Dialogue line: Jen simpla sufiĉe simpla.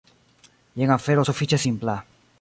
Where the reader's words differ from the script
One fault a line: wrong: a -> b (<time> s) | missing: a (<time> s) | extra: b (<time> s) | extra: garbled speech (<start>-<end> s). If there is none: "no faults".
wrong: simpla -> afero (0.9 s)